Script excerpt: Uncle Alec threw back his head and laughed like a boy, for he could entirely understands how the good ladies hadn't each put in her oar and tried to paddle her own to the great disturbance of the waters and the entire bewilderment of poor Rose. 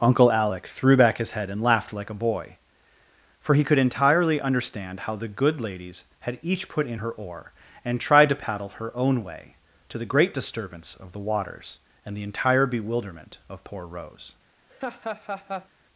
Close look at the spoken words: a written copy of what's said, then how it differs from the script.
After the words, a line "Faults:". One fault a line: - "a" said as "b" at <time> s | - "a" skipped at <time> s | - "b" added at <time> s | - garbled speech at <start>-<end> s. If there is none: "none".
Uncle Alec threw back his head and laughed like a boy, for he could entirely understand how the good ladies had each put in her oar and tried to paddle her own way, to the great disturbance of the waters and the entire bewilderment of poor Rose.
Faults:
- "understands" said as "understand" at 4.4 s
- "hadn't" said as "had" at 6.2 s
- "way" added at 9.2 s